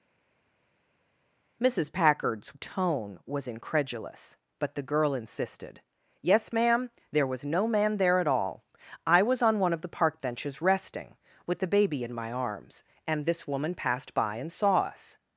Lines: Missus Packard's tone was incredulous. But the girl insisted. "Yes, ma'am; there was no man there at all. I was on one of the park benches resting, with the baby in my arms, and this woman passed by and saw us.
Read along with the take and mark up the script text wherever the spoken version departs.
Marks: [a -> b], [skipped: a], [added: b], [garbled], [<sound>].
Missus Packard's tone was incredulous. But the girl insisted. "Yes, ma'am; there was no man there at all. I was on one of the park benches resting, with the baby in my arms, and this woman passed by and saw us.